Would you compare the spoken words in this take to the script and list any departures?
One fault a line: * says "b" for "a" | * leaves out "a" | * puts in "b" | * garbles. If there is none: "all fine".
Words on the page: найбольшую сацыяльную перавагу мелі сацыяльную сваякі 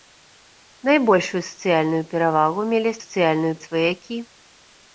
all fine